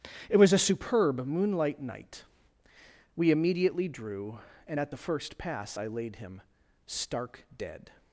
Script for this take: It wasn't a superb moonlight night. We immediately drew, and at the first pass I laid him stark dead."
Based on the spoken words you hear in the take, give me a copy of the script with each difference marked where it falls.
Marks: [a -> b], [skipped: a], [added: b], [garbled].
It [wasn't -> was] a superb moonlight night. We immediately drew, and at the first pass I laid him stark dead."